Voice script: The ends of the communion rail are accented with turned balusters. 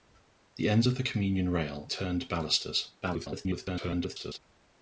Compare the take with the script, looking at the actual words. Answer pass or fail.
fail